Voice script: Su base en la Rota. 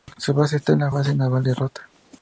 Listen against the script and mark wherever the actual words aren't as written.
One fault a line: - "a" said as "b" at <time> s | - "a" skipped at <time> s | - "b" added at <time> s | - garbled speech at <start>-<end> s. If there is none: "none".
- "está" added at 0.6 s
- "Base Naval de" added at 0.9 s